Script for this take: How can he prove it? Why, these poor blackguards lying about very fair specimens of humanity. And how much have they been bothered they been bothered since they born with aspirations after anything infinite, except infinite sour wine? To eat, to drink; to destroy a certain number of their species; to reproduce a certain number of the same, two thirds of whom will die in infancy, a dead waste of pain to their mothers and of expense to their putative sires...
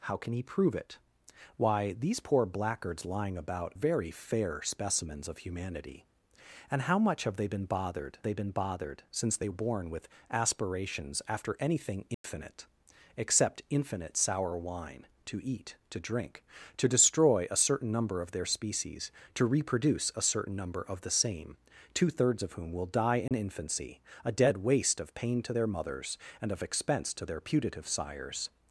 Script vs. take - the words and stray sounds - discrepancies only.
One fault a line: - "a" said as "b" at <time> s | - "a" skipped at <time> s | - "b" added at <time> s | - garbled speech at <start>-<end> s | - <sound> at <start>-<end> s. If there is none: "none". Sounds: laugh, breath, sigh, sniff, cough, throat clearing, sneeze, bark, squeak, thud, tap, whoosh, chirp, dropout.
- dropout at 12.1-12.2 s
- dropout at 23.3-23.3 s